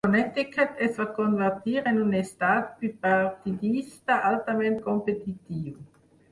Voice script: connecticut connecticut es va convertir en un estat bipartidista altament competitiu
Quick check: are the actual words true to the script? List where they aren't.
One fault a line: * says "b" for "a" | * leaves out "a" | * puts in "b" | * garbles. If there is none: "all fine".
* leaves out "connecticut"